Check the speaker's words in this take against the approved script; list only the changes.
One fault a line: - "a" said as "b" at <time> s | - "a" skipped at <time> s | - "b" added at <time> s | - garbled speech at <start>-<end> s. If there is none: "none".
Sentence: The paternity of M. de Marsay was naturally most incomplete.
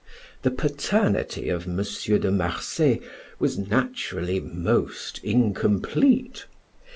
none